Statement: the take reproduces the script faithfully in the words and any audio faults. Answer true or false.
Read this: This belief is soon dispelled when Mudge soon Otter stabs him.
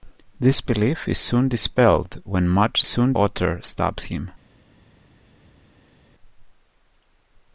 true